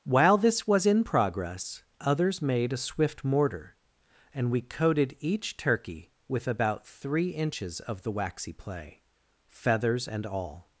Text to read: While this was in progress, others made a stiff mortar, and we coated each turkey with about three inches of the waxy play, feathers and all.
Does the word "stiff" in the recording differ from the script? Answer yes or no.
yes